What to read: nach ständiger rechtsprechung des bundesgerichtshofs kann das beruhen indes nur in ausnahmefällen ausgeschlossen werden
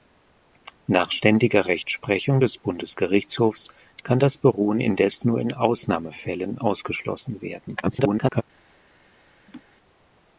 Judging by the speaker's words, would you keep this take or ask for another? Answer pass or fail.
fail